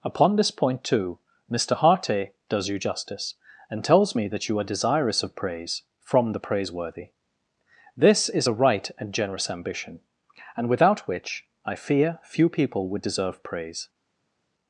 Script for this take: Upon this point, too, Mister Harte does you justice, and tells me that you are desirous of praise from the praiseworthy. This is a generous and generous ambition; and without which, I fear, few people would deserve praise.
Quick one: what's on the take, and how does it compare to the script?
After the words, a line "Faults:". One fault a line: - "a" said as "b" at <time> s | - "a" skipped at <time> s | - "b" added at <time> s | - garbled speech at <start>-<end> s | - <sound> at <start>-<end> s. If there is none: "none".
Upon this point, too, Mister Harte does you justice, and tells me that you are desirous of praise from the praiseworthy. This is a right and generous ambition; and without which, I fear, few people would deserve praise.
Faults:
- "generous" said as "right" at 8.5 s